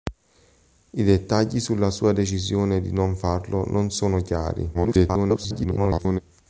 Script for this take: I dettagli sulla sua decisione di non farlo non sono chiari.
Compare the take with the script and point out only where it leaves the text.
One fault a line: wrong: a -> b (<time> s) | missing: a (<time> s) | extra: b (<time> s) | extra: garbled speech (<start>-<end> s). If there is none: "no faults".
extra: garbled speech (4.7-6.2 s)